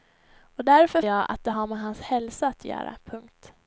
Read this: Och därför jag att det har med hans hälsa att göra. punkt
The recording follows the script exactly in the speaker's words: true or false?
true